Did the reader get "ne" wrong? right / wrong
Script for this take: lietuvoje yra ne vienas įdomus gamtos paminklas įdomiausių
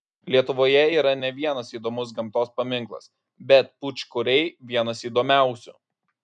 right